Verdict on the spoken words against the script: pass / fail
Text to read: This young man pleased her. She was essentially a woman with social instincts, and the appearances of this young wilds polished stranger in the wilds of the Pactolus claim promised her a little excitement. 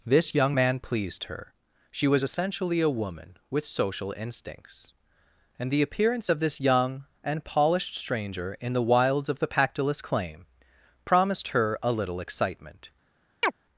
fail